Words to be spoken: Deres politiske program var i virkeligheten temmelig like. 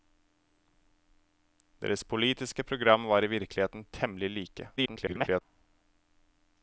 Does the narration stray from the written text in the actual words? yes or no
yes